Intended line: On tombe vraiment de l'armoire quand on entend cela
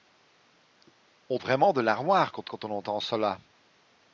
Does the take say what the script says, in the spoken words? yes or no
no